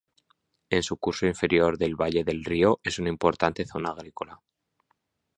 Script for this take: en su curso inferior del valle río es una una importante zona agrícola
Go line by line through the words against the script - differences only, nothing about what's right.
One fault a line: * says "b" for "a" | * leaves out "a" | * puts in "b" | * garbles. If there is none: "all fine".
* puts in "del"
* leaves out "una"